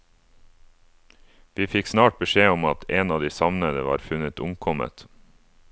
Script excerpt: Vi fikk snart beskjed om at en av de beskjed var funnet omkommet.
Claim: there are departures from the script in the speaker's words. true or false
true